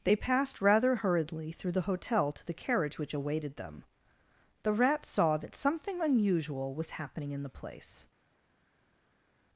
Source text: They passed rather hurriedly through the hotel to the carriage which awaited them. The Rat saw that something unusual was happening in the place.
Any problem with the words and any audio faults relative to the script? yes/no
no